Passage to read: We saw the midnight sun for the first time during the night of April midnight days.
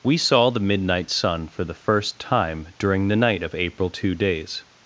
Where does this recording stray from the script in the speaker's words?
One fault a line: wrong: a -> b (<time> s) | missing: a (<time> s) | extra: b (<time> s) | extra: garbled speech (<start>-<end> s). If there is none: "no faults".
wrong: midnight -> two (3.9 s)